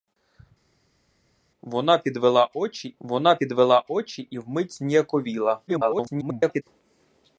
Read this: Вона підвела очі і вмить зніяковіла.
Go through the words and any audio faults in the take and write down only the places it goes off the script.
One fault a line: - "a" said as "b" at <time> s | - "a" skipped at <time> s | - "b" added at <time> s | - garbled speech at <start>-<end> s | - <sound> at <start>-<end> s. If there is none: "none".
- "вона підвела очі" added at 3.0 s
- garbled speech at 5.7-6.6 s